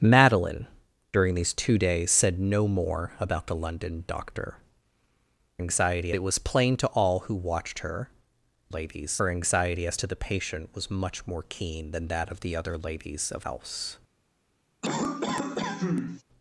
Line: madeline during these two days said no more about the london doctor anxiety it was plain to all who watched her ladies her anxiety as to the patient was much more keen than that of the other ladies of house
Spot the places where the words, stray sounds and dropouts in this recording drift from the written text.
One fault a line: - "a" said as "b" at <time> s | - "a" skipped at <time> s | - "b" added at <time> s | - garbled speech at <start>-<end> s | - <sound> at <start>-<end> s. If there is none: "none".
- cough at 14.8-16.2 s